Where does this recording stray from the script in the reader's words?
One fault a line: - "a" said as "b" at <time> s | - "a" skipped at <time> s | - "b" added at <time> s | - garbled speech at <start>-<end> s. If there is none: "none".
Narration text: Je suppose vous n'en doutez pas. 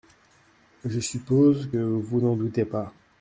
none